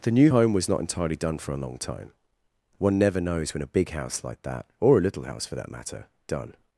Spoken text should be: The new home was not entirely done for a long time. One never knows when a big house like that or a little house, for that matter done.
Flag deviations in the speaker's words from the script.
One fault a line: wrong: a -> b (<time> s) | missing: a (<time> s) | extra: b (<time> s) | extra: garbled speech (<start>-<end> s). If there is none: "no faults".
no faults